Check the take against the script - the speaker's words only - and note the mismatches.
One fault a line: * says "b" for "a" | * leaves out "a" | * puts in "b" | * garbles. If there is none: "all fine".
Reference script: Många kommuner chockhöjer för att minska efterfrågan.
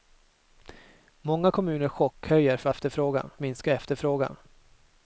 * says "efterfrågan" for "att"